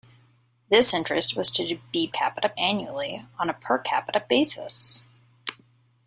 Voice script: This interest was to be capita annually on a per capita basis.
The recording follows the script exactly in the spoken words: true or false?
true